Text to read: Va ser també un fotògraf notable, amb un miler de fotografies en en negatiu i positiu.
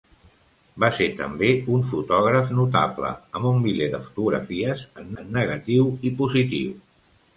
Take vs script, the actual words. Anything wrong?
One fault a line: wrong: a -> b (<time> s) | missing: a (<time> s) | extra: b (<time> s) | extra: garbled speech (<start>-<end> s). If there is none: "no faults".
no faults